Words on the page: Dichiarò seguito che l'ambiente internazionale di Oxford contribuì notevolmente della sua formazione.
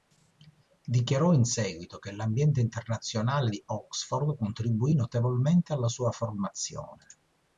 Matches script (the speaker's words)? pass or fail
fail